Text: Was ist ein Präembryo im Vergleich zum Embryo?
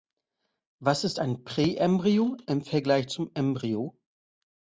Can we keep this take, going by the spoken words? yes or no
yes